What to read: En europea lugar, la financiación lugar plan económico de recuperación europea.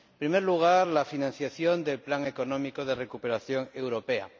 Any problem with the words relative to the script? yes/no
yes